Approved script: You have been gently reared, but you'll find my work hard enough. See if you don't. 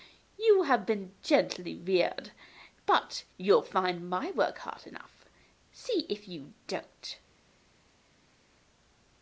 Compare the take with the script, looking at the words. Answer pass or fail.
pass